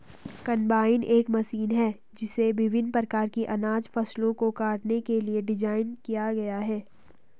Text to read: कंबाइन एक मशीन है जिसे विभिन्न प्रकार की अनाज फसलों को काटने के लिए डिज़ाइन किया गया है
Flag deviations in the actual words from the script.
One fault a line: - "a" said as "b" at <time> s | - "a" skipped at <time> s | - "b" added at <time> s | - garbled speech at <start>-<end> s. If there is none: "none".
none